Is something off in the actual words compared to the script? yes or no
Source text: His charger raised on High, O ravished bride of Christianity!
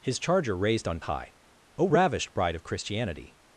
no